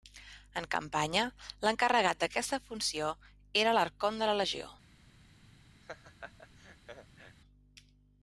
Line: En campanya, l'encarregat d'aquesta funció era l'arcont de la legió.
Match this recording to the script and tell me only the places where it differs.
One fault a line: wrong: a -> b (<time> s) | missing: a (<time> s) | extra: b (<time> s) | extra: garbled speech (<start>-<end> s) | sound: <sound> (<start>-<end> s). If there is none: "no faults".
sound: laugh (5.8-7.4 s)